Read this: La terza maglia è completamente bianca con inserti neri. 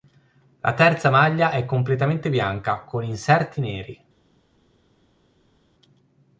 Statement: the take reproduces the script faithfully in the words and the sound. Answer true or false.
true